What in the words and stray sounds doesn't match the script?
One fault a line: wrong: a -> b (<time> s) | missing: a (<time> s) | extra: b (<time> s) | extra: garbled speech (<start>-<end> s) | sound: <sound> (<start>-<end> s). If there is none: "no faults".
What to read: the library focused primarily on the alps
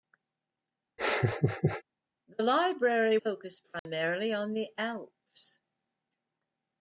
sound: laugh (1.0-1.8 s)
sound: dropout (3.8-3.9 s)